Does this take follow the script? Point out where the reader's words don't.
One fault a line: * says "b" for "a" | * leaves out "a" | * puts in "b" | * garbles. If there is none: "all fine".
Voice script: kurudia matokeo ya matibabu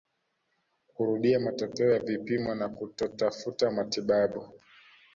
* puts in "vipimo na kutotafuta"